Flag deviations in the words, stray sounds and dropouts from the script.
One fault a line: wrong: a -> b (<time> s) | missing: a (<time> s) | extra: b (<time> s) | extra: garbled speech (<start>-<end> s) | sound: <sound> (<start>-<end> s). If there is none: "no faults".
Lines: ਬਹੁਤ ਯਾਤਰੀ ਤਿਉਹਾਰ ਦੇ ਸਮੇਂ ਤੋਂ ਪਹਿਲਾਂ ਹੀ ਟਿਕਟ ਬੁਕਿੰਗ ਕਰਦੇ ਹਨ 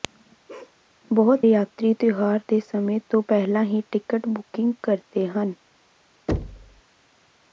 sound: bark (0.5-0.8 s)
sound: thud (6.3-6.8 s)